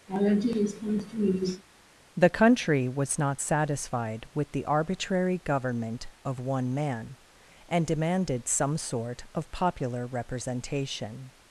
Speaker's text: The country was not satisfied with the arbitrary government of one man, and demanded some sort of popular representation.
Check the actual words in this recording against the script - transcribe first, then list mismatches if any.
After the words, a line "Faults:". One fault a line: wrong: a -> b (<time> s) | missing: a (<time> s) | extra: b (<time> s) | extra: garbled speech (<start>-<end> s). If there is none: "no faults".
The country was not satisfied with the arbitrary government of one man, and demanded some sort of popular representation.
Faults:
no faults